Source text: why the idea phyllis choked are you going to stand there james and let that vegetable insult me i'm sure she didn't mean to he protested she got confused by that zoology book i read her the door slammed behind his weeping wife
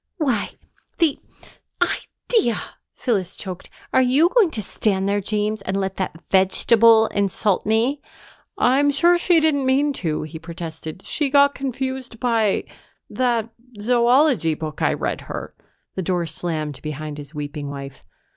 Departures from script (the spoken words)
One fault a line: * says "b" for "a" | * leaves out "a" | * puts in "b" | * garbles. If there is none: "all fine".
all fine